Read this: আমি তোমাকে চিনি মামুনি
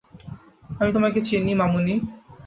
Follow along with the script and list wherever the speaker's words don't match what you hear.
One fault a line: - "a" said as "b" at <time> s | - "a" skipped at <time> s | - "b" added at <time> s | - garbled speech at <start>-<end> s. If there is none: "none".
none